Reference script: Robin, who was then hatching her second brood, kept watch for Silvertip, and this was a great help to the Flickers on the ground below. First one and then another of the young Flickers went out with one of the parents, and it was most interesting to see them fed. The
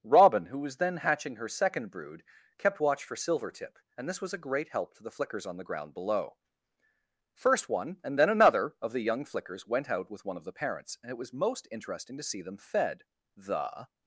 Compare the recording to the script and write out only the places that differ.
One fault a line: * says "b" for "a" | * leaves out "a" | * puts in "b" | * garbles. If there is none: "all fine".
all fine